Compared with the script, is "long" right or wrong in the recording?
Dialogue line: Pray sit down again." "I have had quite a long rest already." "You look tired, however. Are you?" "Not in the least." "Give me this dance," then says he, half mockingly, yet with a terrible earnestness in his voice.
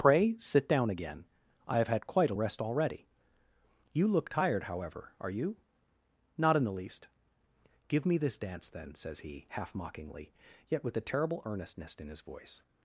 wrong